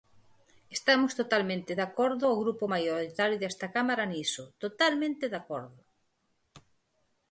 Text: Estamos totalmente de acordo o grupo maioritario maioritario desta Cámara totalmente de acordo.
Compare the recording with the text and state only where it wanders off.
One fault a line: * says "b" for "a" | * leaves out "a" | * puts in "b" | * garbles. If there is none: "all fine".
* leaves out "maioritario"
* puts in "niso"